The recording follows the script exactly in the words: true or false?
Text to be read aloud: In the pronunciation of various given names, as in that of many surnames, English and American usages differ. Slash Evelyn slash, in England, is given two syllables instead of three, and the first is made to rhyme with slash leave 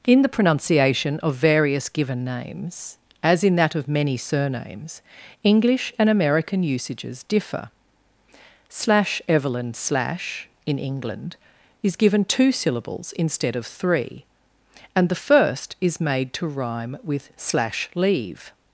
true